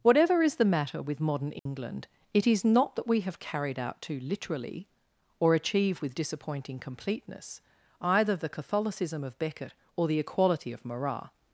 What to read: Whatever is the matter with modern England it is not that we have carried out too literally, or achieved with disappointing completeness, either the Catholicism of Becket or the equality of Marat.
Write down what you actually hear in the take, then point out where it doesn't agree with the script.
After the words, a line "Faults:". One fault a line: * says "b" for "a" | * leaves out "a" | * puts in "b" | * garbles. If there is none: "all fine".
Whatever is the matter with modern England it is not that we have carried out too literally, or achieve with disappointing completeness, either the Catholicism of Becket or the equality of Marat.
Faults:
* says "achieve" for "achieved"